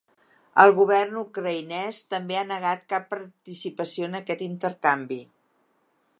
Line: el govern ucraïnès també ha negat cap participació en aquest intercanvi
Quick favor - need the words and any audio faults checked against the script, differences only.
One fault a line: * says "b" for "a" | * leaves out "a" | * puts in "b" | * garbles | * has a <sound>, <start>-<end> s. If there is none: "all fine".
all fine